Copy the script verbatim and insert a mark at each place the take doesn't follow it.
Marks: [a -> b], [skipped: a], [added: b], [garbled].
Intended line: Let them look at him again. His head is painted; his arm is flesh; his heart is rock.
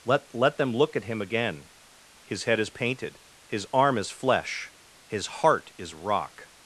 Let [added: let] them look at him again. His head is painted; his arm is flesh; his heart is rock.